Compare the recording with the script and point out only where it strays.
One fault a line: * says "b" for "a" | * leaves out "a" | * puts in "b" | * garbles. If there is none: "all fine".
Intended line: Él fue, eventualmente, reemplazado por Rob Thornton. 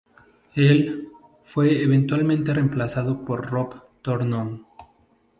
all fine